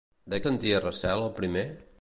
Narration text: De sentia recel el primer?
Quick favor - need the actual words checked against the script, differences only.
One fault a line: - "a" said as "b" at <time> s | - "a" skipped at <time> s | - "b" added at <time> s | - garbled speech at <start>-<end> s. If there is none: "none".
none